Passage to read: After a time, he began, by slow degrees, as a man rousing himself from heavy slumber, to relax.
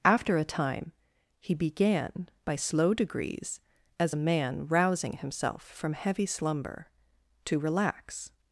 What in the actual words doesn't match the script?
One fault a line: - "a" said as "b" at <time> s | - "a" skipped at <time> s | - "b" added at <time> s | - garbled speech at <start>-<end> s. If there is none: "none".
none